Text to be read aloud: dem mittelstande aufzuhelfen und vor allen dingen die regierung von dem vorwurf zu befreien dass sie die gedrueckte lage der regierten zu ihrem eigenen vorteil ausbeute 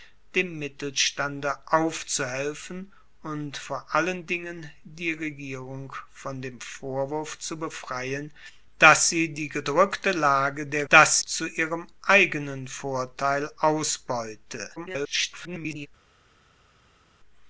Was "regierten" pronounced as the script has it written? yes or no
no